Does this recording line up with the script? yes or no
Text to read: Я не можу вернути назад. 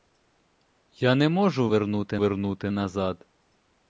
no